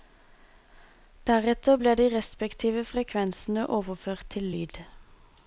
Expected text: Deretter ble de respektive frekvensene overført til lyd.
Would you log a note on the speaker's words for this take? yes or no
no